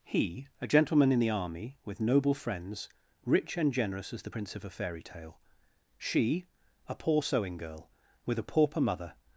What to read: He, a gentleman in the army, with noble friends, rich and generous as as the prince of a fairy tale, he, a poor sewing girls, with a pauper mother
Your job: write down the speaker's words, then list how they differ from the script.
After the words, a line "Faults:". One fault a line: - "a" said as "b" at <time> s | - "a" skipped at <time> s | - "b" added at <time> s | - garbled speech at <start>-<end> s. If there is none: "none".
He, a gentleman in the army, with noble friends, rich and generous as the prince of a fairy tale, she, a poor sewing girl, with a pauper mother
Faults:
- "as" skipped at 4.2 s
- "he" said as "she" at 6.0 s
- "girls" said as "girl" at 7.6 s